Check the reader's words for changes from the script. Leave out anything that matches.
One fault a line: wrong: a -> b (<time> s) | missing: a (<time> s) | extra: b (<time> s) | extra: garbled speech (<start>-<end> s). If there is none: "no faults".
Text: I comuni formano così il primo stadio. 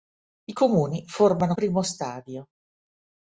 missing: così il (1.6 s)